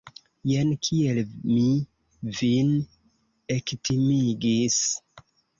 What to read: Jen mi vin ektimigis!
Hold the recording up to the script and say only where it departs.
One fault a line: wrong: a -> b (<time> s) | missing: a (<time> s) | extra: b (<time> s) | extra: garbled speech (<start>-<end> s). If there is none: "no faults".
extra: kiel (0.9 s)